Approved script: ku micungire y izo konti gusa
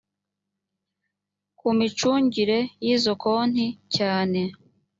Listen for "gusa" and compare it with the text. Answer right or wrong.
wrong